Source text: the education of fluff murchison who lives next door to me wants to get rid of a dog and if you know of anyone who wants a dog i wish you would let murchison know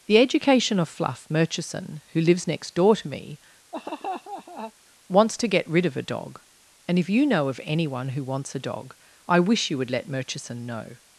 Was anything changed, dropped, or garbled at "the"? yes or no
no